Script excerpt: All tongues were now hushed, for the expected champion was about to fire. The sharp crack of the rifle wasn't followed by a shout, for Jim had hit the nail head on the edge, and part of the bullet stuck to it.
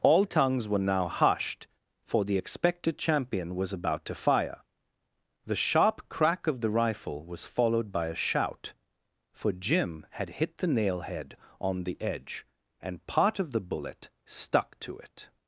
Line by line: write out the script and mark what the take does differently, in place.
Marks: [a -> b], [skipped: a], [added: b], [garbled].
All tongues were now hushed, for the expected champion was about to fire. The sharp crack of the rifle [wasn't -> was] followed by a shout, for Jim had hit the nail head on the edge, and part of the bullet stuck to it.